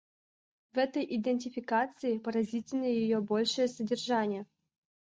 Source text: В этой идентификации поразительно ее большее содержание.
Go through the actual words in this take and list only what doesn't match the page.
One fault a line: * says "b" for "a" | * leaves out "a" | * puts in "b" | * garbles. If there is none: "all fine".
all fine